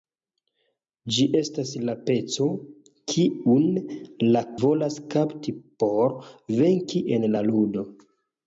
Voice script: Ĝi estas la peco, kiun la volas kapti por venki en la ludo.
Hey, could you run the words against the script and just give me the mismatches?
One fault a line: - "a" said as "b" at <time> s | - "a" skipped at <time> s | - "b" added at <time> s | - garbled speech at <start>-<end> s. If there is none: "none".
none